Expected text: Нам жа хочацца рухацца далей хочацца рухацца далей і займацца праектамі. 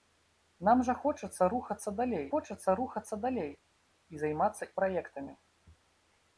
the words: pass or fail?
pass